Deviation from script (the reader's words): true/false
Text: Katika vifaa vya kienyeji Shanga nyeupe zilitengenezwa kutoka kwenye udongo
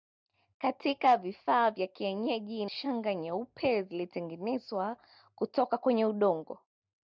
false